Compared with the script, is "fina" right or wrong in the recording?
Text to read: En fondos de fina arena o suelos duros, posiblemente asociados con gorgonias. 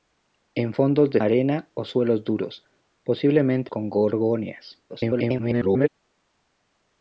wrong